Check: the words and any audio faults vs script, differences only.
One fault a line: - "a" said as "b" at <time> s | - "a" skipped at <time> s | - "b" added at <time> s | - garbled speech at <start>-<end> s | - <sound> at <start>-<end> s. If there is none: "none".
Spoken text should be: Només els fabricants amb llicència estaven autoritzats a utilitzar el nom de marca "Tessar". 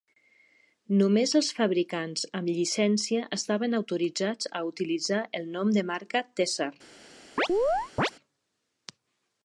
- chirp at 7.4-8.1 s